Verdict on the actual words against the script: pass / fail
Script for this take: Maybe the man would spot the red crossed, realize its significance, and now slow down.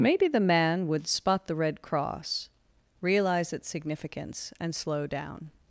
fail